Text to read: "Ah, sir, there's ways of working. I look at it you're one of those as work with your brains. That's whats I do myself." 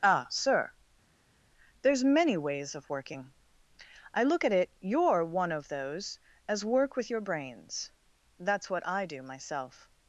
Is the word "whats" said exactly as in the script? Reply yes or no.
no